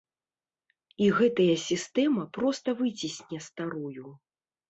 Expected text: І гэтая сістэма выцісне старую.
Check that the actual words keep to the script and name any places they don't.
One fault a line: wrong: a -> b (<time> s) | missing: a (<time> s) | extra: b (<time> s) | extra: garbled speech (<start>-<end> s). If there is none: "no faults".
extra: проста (2.4 s)